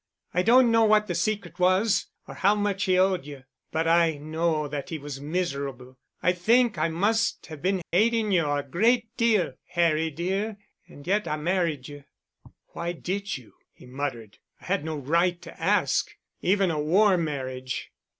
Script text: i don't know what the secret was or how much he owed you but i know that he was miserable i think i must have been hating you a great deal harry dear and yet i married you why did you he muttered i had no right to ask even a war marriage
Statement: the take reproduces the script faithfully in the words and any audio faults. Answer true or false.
false